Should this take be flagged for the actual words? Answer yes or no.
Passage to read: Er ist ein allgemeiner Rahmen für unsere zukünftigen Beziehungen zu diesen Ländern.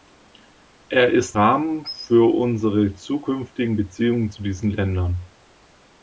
yes